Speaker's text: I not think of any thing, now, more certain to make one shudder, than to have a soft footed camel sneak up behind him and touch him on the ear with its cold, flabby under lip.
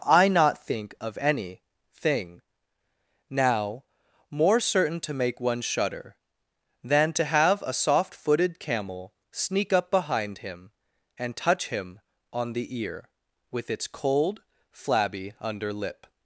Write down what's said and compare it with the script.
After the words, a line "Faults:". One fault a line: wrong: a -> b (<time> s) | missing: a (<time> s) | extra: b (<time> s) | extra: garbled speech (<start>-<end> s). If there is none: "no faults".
I not think of any thing, now, more certain to make one shudder, than to have a soft footed camel sneak up behind him and touch him on the ear with its cold, flabby under lip.
Faults:
no faults